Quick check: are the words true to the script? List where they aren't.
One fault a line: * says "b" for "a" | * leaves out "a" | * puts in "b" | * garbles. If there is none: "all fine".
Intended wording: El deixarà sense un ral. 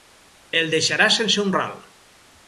all fine